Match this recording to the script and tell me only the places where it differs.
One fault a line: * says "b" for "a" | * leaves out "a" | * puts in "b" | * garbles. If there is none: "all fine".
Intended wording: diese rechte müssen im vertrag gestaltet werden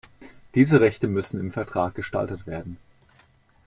all fine